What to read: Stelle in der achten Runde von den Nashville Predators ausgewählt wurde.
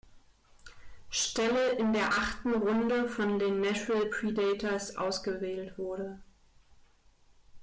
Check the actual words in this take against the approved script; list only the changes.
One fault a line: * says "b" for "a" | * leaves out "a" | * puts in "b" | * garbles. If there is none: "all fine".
all fine